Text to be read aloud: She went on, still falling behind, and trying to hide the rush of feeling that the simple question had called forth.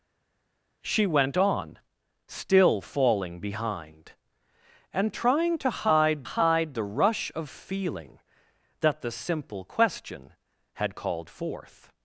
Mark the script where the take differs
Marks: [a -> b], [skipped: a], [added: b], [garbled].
She went on, still falling behind, and trying to hide [added: hide] the rush of feeling that the simple question had called forth.